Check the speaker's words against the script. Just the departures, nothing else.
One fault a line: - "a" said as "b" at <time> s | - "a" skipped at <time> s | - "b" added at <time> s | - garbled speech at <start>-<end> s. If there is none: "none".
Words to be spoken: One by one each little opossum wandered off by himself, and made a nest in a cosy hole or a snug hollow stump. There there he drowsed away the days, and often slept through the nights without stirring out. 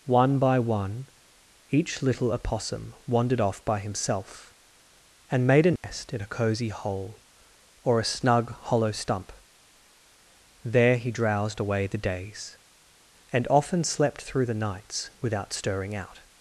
- "there" skipped at 11.0 s